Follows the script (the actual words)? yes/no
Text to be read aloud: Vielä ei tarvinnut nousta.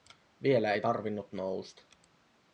yes